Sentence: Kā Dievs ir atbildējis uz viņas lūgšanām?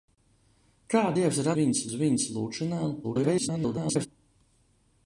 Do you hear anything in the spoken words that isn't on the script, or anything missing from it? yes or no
yes